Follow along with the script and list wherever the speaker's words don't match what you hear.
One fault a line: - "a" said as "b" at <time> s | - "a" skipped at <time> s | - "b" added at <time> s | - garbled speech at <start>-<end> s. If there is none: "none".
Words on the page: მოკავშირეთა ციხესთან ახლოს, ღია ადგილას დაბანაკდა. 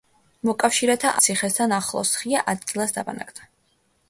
none